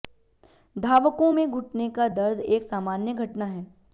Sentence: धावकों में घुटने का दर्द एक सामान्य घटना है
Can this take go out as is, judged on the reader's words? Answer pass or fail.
pass